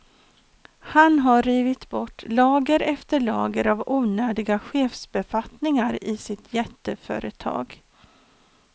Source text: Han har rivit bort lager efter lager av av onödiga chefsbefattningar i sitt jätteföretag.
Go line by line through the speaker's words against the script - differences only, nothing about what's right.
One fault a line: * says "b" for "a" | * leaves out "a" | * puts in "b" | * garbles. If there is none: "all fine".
* leaves out "av"